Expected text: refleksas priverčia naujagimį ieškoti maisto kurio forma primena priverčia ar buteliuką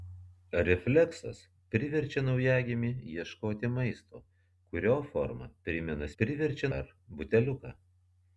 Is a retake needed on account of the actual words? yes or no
no